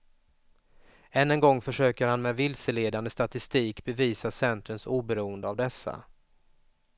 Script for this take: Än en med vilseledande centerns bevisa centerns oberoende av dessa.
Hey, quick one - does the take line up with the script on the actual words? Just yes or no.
no